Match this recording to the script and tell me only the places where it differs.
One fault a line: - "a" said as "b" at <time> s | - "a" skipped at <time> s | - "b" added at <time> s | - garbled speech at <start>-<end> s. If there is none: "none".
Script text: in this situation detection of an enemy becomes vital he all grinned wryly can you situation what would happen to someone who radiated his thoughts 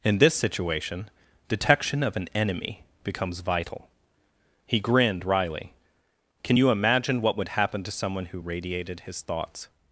- "all" skipped at 4.8 s
- "situation" said as "imagine" at 6.7 s